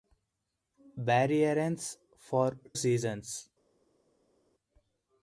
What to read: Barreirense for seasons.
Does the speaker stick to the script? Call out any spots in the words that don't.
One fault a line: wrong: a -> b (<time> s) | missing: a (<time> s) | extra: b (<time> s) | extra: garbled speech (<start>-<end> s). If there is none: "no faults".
no faults